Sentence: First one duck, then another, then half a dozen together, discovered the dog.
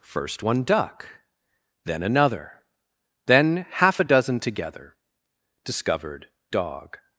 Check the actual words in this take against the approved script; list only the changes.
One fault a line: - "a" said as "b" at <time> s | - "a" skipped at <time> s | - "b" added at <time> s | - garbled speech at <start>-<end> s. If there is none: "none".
- "the" skipped at 6.3 s